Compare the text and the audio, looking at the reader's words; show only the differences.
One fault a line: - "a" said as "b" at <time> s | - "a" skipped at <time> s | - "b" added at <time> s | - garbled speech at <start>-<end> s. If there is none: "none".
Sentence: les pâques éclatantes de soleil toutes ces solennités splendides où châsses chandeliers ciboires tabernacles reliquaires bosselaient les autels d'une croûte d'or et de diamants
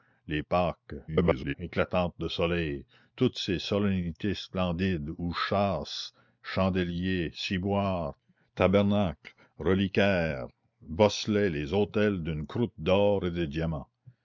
- garbled speech at 1.1-1.5 s